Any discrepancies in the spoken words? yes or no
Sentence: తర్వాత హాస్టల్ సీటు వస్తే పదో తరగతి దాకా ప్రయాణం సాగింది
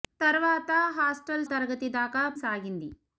yes